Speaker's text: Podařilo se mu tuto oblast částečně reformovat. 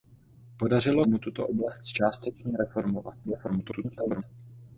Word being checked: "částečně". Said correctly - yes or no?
yes